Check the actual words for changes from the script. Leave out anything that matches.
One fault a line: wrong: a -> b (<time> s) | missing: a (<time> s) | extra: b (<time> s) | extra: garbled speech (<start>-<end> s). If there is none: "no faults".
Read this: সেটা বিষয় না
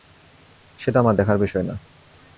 extra: আমার দেখার (1.0 s)